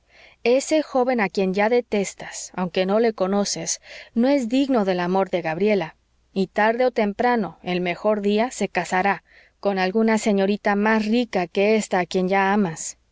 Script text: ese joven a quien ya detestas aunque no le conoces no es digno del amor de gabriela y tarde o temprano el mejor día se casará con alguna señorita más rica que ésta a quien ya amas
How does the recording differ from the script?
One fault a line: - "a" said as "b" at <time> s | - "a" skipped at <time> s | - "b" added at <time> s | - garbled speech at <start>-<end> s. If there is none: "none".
none